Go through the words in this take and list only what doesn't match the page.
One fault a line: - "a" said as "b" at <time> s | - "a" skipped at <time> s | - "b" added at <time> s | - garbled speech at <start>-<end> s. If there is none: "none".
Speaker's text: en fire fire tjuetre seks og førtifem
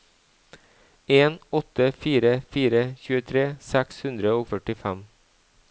- "åtte" added at 1.6 s
- "hundre" added at 4.1 s